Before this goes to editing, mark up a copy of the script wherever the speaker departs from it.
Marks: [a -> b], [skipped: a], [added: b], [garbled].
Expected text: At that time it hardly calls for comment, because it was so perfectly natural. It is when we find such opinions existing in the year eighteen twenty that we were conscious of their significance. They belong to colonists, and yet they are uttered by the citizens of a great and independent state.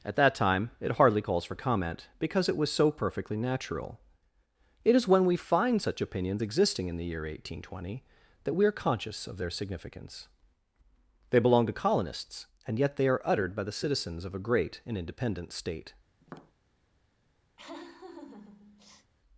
At that time it hardly calls for comment, because it was so perfectly natural. It is when we find such opinions existing in the year eighteen twenty that we [were -> are] conscious of their significance. They belong to colonists, and yet they are uttered by the citizens of a great and independent state.